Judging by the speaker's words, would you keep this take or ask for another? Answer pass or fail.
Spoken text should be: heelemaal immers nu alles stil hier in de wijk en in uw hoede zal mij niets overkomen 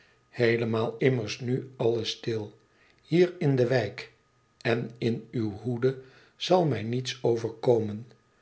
pass